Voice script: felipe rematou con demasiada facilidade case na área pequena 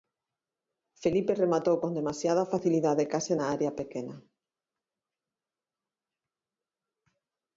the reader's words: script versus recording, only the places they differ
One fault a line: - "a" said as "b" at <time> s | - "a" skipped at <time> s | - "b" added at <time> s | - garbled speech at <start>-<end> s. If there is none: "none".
none